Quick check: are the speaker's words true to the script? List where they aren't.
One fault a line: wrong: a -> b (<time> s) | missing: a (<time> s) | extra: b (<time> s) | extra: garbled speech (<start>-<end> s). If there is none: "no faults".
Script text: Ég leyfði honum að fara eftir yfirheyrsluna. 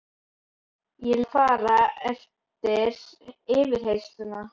missing: leyfði honum (1.2 s)